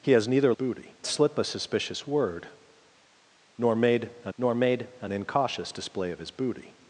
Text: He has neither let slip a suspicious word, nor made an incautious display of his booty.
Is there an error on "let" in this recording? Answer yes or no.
yes